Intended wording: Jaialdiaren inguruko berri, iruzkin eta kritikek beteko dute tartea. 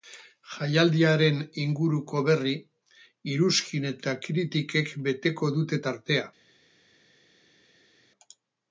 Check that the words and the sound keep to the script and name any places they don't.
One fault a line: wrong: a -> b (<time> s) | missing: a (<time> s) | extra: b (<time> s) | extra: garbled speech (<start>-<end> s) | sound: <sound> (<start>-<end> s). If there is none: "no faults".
no faults